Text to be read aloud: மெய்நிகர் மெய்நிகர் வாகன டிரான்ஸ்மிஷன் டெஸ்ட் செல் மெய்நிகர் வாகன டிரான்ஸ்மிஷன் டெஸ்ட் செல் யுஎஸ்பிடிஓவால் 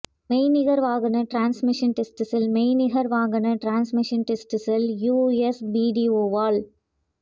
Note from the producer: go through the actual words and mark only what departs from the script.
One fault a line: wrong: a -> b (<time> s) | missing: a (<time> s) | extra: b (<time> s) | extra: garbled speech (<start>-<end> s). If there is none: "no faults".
missing: மெய்நிகர் (0.8 s)